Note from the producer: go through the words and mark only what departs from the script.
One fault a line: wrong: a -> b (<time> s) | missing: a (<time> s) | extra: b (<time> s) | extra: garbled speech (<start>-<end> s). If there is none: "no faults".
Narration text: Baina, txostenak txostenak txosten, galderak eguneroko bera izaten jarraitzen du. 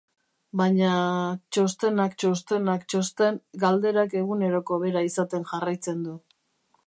no faults